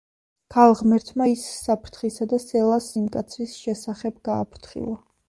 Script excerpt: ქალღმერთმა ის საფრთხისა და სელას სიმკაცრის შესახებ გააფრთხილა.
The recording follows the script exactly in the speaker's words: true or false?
true